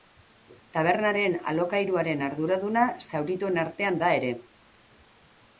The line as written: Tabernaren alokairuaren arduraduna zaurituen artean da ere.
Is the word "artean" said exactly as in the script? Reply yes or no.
yes